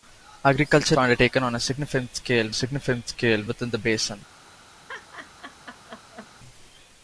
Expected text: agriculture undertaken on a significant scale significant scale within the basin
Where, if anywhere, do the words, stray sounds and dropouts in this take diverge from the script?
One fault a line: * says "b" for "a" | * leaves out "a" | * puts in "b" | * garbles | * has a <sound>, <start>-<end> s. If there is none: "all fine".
* has a laugh, 4.9-6.3 s